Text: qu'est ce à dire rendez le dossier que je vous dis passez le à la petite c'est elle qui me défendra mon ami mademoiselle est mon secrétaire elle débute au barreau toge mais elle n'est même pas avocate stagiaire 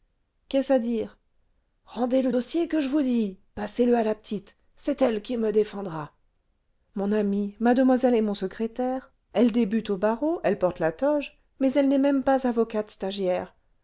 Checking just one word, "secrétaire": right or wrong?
right